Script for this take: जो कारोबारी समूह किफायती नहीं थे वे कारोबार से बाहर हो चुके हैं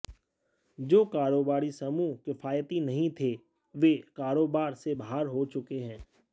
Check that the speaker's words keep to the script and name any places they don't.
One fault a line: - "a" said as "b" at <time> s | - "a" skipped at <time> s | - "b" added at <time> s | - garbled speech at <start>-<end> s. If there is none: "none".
none